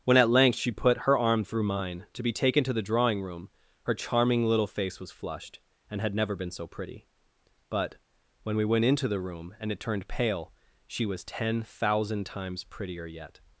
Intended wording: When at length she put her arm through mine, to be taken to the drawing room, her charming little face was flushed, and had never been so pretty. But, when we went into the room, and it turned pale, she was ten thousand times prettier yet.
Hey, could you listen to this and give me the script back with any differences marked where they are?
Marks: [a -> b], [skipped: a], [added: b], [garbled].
When at length she put her arm through mine, to be taken to the drawing room, her charming little face was flushed, and had never been so pretty. But, when we went into the room, and it turned pale, she was ten thousand times prettier yet.